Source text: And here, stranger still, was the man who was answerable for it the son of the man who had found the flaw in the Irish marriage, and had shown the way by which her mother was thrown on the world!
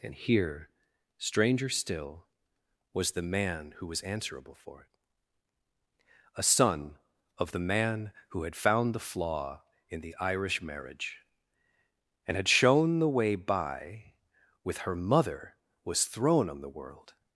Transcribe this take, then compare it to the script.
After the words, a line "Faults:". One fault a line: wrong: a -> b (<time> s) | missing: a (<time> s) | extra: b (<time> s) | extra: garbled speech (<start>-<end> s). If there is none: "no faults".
And here, stranger still, was the man who was answerable for it a son of the man who had found the flaw in the Irish marriage, and had shown the way by with her mother was thrown on the world!
Faults:
wrong: the -> a (6.3 s)
wrong: which -> with (14.6 s)